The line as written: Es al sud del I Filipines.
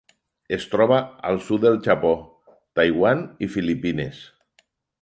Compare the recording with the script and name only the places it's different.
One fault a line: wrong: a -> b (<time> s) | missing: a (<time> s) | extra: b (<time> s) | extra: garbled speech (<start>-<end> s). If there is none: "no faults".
extra: troba (0.7 s)
extra: Japó Taiwan (1.9 s)